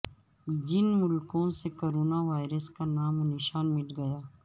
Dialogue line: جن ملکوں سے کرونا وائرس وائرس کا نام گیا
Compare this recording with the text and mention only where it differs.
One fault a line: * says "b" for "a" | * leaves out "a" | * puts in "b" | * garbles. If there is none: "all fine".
* leaves out "وائرس"
* puts in "و نشان مٹ"